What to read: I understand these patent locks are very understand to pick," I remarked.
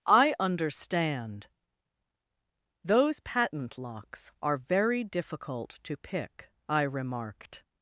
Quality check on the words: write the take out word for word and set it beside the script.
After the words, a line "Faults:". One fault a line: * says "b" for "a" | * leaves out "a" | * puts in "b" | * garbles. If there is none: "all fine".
I understand those patent locks are very difficult to pick," I remarked.
Faults:
* says "those" for "these"
* says "difficult" for "understand"